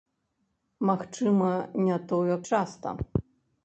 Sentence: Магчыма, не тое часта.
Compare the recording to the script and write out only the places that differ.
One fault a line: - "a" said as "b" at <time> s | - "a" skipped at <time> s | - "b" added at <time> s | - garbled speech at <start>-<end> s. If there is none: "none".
none